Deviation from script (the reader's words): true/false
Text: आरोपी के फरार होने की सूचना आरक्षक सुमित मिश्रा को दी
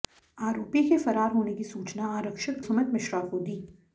false